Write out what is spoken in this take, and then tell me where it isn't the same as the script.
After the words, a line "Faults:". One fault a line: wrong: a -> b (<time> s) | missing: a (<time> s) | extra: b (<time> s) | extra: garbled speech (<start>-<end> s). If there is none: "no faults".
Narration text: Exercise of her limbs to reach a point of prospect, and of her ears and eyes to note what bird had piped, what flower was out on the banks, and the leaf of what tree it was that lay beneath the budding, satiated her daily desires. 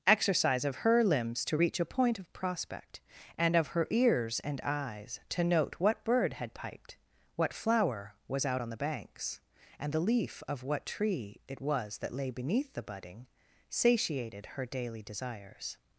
Exercise of her limbs to reach a point of prospect, and of her ears and eyes to note what bird had piped, what flower was out on the banks, and the leaf of what tree it was that lay beneath the budding, satiated her daily desires.
Faults:
no faults